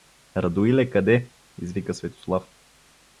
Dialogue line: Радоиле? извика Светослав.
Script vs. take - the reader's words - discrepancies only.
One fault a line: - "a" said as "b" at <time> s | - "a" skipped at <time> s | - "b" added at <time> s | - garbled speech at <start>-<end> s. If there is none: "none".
- "къде" added at 0.9 s